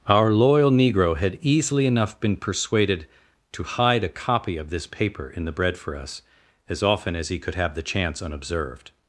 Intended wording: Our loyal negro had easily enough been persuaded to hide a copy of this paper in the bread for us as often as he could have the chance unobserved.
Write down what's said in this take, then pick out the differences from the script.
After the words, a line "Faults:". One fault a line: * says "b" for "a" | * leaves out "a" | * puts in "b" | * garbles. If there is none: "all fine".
Our loyal negro had easily enough been persuaded to hide a copy of this paper in the bread for us as often as he could have the chance unobserved.
Faults:
all fine